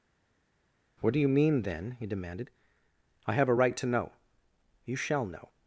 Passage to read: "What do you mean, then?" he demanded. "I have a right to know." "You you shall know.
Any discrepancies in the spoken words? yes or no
yes